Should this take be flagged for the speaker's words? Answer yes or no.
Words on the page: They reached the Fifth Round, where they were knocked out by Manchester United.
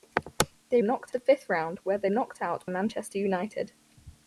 yes